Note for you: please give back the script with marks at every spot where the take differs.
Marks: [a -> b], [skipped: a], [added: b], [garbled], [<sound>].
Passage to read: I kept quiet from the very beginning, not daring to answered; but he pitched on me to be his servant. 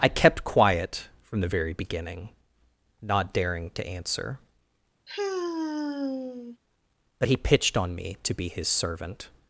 I kept quiet from the very beginning, not daring to [answered; -> answer] [sigh] but he pitched on me to be his servant.